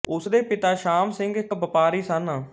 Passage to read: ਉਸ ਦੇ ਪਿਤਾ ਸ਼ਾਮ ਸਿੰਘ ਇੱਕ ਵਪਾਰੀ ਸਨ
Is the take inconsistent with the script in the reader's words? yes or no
no